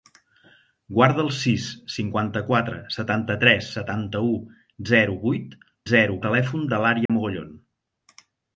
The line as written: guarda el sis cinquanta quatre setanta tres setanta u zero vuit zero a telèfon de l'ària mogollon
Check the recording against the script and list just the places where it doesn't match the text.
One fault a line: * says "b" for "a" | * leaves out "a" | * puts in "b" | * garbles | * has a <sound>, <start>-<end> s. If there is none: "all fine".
* has a dropout, 7.1-7.1 s